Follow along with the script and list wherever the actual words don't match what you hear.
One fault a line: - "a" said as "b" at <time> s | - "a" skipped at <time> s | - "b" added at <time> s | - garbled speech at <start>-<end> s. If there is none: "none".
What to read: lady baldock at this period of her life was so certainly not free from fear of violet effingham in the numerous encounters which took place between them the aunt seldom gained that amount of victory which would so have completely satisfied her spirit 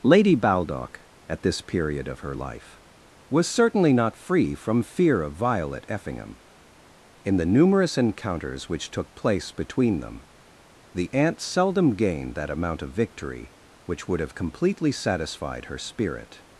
- "so" skipped at 3.5 s
- "so" skipped at 14.2 s